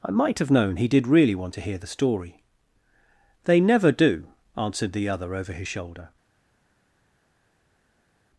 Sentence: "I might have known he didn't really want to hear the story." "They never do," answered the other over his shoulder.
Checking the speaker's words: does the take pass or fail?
fail